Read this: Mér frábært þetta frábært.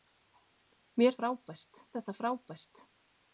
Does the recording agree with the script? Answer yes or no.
yes